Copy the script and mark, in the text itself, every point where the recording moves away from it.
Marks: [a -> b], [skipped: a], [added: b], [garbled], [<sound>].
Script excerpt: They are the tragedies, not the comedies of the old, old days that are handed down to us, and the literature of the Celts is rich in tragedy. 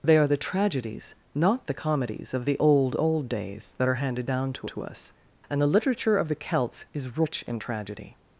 They are the tragedies, not the comedies of the old, old days that are handed down to [added: to] us, and the literature of the Celts is rich in tragedy.